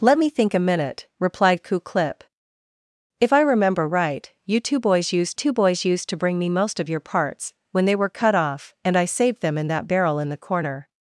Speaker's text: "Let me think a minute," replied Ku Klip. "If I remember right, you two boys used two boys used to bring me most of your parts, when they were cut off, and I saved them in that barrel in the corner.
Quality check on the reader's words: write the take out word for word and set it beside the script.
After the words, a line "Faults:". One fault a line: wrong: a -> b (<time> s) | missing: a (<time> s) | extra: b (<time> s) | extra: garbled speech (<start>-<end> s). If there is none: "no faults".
"Let me think a minute," replied Ku Klip. "If I remember right, you two boys used two boys used to bring me most of your parts, when they were cut off, and I saved them in that barrel in the corner.
Faults:
no faults